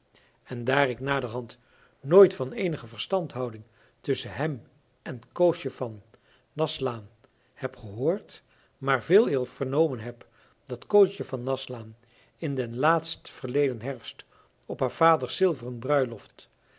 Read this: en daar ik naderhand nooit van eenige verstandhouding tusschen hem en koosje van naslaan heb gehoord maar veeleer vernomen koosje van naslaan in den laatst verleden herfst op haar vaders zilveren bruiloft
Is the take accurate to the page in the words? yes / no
no